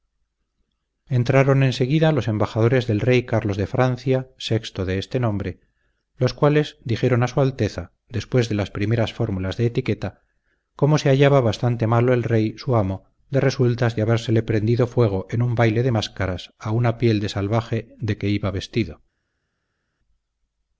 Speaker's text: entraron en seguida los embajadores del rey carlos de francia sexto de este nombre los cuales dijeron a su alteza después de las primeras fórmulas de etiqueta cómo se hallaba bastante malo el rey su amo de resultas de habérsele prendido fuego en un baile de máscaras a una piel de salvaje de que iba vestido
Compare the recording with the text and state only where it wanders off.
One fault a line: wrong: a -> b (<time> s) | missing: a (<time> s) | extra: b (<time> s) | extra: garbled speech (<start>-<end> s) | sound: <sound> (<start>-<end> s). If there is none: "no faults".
no faults